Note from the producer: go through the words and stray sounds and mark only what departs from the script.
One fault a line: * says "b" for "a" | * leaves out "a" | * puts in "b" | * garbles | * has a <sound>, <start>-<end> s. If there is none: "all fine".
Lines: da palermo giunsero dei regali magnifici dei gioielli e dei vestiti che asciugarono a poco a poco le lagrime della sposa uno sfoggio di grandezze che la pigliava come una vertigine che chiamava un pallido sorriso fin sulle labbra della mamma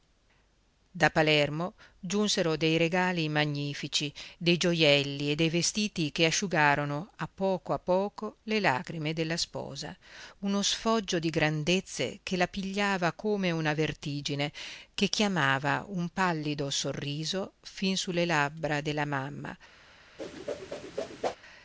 * has a whoosh, 20.2-21.4 s